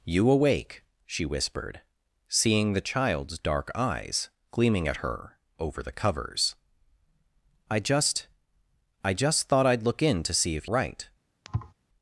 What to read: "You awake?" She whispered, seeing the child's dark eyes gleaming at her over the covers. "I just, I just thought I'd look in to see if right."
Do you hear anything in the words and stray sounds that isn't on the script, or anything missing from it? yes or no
yes